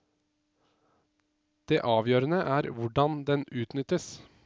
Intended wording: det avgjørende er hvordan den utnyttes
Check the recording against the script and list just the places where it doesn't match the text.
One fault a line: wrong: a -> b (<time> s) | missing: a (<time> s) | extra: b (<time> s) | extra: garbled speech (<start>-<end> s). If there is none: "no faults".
no faults